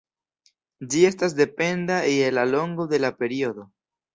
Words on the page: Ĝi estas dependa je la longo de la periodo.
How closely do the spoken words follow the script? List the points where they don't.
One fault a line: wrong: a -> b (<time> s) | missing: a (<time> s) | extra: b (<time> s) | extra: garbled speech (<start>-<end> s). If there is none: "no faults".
no faults